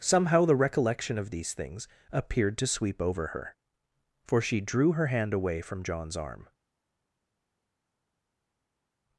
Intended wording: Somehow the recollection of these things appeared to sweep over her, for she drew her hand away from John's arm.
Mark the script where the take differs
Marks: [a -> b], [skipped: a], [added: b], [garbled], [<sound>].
Somehow the recollection of these things appeared to sweep over her, for she drew her hand away from John's arm.